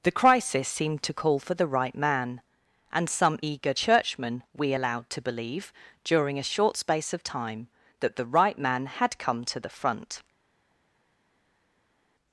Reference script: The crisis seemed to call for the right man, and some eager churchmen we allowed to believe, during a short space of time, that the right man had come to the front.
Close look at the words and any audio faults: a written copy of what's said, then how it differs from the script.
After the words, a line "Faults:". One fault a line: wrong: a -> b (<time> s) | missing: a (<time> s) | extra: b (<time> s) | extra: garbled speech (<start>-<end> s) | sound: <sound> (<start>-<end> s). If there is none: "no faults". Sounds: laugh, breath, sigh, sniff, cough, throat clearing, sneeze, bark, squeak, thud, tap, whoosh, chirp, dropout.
The crisis seemed to call for the right man, and some eager churchmen we allowed to believe, during a short space of time, that the right man had come to the front.
Faults:
no faults